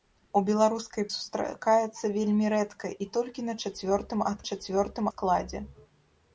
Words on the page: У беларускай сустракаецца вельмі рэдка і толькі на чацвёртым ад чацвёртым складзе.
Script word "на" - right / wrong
right